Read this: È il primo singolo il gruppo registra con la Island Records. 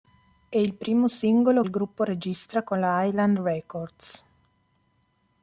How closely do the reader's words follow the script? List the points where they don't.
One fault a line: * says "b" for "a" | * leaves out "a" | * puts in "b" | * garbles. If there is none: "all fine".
all fine